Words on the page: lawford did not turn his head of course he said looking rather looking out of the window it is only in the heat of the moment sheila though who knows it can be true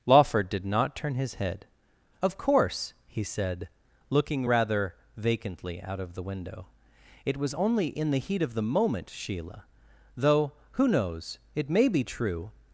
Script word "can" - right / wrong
wrong